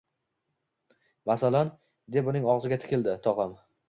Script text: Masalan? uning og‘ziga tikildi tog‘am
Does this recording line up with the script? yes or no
no